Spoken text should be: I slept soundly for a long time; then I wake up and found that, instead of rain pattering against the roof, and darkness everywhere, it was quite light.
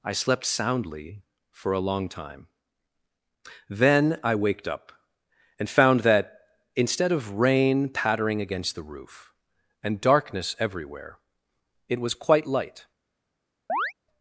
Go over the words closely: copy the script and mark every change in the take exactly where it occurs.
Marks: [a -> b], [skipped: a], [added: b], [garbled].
I slept soundly for a long time; then I [wake -> waked] up and found that, instead of rain pattering against the roof, and darkness everywhere, it was quite light.